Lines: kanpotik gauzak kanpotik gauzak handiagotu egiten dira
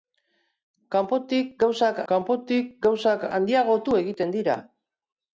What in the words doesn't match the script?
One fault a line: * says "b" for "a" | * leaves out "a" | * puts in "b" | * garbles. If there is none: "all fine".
all fine